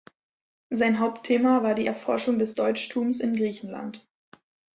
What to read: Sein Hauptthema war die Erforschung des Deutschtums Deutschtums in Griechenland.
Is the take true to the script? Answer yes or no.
no